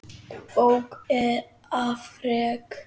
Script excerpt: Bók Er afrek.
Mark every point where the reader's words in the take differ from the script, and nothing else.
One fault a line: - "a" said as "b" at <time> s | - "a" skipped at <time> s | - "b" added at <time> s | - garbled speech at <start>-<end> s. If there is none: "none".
none